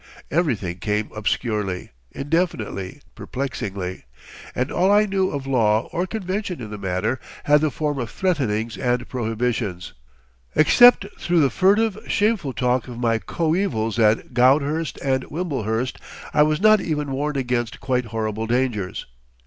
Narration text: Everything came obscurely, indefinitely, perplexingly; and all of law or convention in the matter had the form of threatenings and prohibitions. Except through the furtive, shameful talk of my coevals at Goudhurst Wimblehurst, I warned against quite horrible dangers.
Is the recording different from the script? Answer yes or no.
yes